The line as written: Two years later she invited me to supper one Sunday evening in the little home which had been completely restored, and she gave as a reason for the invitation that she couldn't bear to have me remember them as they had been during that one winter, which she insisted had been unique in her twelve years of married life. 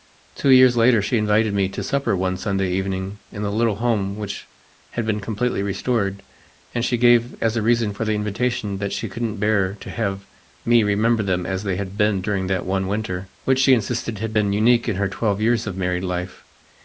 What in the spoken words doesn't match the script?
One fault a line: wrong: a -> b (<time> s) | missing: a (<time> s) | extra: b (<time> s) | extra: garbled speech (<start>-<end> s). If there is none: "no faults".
no faults